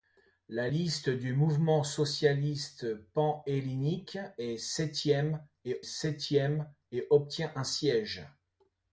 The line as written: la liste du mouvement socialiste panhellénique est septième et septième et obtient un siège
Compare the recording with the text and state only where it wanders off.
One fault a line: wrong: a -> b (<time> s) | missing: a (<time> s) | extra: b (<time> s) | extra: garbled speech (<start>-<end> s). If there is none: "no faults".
no faults